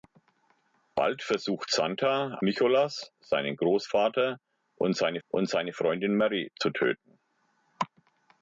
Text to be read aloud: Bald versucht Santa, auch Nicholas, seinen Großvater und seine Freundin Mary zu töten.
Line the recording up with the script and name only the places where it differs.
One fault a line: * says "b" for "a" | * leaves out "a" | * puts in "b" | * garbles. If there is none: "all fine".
* leaves out "auch"
* puts in "und seine"